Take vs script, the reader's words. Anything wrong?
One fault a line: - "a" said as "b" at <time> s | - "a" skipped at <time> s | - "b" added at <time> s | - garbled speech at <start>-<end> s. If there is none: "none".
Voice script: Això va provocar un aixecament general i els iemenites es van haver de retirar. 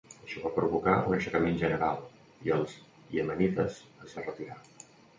- "van haver" skipped at 4.2 s